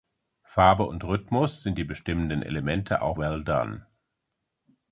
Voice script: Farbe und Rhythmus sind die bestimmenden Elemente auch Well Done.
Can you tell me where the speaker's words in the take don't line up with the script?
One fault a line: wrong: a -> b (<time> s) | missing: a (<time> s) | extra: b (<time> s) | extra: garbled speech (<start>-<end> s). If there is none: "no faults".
no faults